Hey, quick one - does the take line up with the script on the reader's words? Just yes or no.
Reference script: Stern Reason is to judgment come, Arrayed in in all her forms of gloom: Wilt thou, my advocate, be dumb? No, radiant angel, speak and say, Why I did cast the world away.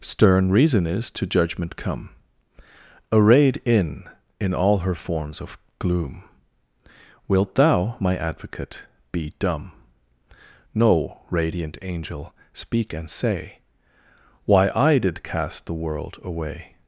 yes